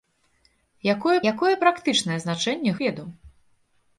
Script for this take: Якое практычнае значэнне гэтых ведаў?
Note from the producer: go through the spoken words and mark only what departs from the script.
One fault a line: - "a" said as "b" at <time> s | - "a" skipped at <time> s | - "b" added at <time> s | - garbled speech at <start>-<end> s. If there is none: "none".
- "якое" added at 1.3 s
- "гэтых" skipped at 2.7 s